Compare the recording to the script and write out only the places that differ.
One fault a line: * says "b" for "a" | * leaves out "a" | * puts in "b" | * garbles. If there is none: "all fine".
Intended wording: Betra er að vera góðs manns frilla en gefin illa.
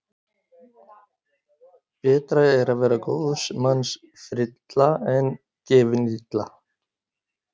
all fine